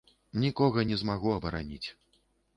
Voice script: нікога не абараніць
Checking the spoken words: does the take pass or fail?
fail